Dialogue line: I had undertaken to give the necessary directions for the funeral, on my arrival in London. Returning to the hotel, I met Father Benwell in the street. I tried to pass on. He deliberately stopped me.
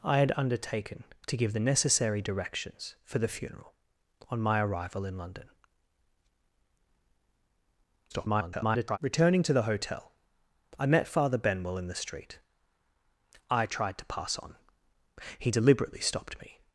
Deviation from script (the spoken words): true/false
true